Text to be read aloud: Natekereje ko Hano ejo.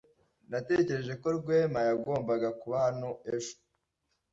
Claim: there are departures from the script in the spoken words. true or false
true